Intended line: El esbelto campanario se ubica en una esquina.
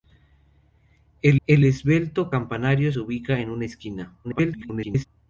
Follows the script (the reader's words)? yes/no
no